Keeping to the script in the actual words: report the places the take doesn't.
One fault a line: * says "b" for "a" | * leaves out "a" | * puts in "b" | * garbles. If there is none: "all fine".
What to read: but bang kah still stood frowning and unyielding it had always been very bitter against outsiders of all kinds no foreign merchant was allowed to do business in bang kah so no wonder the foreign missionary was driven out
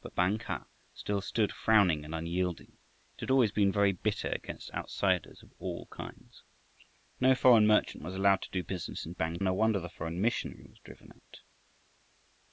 * leaves out "kah so"